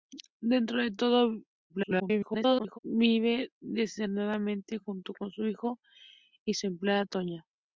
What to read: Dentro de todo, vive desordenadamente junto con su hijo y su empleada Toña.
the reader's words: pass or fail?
fail